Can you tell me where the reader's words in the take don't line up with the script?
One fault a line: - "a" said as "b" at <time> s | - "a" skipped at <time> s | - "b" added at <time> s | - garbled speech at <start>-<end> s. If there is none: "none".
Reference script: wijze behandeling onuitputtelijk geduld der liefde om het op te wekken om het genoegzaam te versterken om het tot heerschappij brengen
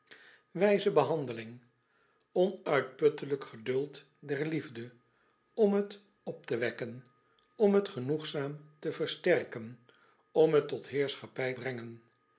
none